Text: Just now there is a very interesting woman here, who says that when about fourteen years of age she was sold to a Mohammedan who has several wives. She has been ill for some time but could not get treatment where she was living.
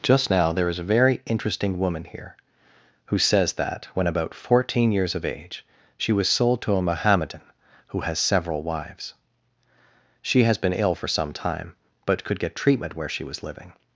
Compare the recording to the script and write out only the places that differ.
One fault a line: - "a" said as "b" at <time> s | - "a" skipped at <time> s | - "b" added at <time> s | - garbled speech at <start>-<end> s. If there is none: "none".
- "not" skipped at 12.4 s